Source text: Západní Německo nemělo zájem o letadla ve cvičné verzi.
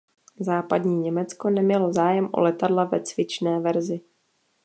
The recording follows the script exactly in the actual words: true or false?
true